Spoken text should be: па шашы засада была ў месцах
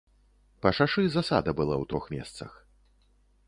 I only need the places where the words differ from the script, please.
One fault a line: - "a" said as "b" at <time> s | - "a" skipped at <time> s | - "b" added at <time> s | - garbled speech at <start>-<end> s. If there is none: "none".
- "трох" added at 1.9 s